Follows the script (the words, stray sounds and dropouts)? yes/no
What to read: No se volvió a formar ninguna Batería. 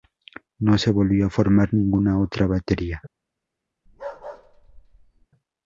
no